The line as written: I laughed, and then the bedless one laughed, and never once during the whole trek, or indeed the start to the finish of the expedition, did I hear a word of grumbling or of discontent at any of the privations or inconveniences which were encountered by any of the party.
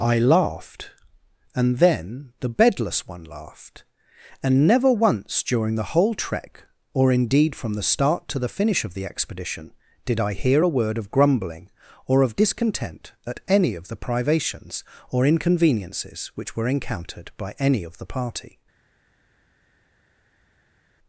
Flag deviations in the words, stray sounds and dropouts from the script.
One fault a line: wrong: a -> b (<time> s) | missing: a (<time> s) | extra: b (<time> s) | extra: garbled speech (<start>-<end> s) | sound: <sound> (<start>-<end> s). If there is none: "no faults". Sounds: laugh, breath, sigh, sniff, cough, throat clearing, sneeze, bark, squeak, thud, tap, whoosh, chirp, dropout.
extra: from (7.5 s)